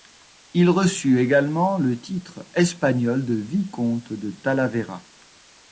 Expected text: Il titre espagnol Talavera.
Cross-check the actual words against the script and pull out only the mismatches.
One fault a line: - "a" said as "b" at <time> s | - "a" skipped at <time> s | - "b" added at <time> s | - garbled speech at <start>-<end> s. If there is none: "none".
- "reçut également le" added at 0.7 s
- "de vicomte de" added at 3.2 s